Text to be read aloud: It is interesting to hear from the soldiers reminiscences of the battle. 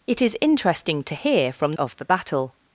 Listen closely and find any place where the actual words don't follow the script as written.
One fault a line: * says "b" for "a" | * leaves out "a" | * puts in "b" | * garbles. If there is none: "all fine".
* leaves out "the soldiers reminiscences"